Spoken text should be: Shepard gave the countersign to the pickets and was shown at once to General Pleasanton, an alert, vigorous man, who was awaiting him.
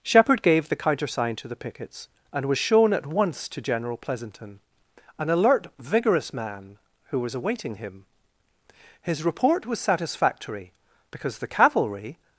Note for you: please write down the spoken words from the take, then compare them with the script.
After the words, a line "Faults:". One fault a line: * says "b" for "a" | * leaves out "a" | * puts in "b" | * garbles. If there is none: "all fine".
Shepard gave the countersign to the pickets and was shown at once to General Pleasanton, an alert, vigorous man, who was awaiting him. His report was satisfactory, because the cavalry
Faults:
* puts in "His report was satisfactory because the cavalry"